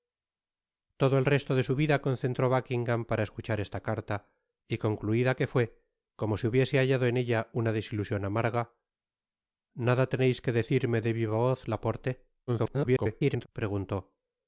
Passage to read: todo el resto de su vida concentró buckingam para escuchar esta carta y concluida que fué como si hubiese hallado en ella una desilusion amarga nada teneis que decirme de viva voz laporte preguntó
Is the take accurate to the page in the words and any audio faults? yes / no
no